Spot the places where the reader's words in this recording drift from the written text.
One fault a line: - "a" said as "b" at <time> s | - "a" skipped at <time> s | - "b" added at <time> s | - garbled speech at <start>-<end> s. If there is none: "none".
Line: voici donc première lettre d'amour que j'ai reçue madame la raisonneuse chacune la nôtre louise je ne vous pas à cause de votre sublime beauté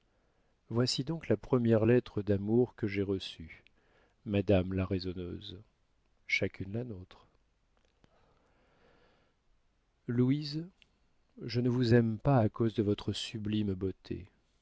- "la" added at 1.3 s
- "aime" added at 11.9 s